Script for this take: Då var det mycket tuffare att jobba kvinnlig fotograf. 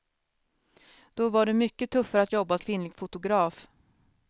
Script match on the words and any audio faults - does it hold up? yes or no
yes